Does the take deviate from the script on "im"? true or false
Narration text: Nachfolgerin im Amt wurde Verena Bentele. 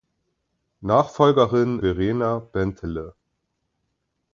true